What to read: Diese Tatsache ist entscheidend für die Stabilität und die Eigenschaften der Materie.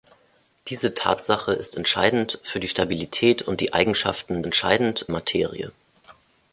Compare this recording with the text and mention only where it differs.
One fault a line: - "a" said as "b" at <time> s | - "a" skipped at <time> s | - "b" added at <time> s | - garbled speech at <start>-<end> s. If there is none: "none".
- "der" said as "entscheidend" at 4.4 s